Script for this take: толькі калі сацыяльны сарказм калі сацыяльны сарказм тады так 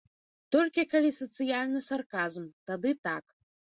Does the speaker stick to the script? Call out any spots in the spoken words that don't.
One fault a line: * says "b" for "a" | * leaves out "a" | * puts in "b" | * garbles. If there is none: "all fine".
* leaves out "калі сацыяльны сарказм"